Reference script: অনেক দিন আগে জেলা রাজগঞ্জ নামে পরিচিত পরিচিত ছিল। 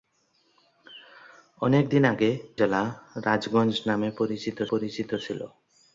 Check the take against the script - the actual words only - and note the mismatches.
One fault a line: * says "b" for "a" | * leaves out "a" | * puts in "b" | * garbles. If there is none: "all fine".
all fine